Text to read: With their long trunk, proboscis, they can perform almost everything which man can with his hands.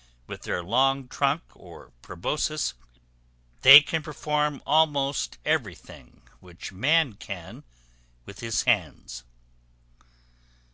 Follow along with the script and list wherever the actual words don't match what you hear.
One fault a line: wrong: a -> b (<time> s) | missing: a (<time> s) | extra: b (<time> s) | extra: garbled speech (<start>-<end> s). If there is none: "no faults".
extra: or (1.5 s)